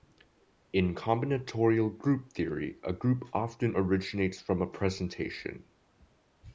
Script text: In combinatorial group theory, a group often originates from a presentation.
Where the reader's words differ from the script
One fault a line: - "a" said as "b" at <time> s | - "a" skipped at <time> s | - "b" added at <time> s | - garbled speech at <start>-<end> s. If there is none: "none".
none